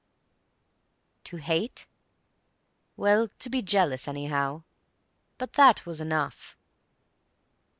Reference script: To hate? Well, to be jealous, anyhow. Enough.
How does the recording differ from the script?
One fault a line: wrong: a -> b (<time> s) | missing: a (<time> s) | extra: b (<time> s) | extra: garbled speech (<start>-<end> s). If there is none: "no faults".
extra: But that was (5.4 s)